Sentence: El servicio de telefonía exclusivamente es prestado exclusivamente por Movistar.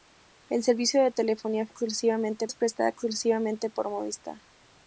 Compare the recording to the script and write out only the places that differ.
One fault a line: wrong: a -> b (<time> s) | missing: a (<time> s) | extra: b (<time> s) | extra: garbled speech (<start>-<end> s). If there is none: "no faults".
no faults